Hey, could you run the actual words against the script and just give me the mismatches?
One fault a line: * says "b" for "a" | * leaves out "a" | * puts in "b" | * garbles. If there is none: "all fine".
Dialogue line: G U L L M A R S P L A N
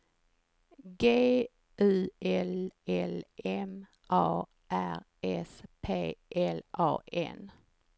all fine